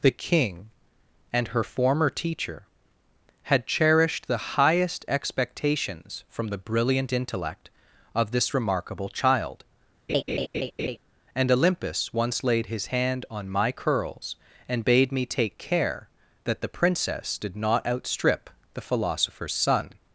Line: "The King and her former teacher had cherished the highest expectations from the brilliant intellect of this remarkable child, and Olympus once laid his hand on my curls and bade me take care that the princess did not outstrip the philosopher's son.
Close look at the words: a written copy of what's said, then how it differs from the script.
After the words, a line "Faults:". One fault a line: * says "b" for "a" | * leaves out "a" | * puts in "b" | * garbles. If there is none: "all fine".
"The King and her former teacher had cherished the highest expectations from the brilliant intellect of this remarkable child, and Olympus once laid his hand on my curls and bade me take care that the princess did not outstrip the philosopher's son.
Faults:
all fine